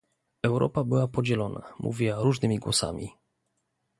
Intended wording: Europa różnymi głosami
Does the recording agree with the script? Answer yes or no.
no